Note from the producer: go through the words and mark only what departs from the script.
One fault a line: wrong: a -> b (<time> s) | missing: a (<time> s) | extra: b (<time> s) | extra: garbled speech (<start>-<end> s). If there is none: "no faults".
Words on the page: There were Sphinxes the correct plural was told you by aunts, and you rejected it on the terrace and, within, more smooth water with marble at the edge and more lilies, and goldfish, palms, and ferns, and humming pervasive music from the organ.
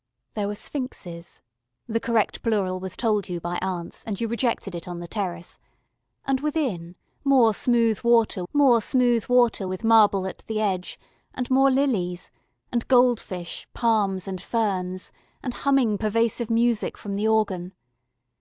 extra: more smooth water (8.5 s)